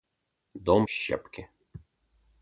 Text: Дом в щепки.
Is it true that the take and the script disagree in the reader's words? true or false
false